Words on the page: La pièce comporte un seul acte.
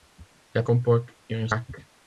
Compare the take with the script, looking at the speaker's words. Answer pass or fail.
fail